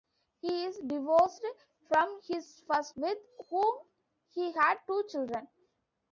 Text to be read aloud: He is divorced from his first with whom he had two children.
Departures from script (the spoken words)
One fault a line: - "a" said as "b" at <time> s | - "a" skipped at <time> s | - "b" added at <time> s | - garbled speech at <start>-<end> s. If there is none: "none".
none